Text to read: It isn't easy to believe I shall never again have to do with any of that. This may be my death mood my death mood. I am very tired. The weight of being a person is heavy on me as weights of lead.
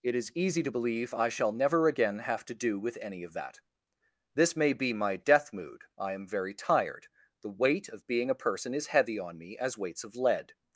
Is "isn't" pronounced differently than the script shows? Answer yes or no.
yes